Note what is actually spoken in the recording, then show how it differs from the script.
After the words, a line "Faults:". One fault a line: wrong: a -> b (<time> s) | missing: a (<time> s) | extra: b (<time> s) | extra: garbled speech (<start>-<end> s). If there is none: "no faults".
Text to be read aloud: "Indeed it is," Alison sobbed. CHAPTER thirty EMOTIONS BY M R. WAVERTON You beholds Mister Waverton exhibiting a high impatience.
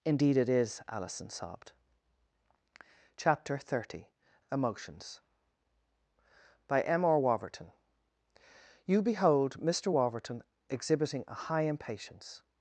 "Indeed it is," Alison sobbed. CHAPTER thirty EMOTIONS BY M R. WAVERTON You behold Mister Waverton exhibiting a high impatience.
Faults:
wrong: beholds -> behold (9.0 s)